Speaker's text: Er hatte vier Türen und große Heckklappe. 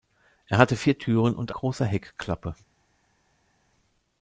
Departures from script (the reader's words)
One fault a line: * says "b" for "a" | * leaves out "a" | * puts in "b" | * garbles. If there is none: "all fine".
all fine